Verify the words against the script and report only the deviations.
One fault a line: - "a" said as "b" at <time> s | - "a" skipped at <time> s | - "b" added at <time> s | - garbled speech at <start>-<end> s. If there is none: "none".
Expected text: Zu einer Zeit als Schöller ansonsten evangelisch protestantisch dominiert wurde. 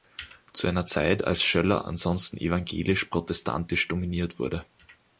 none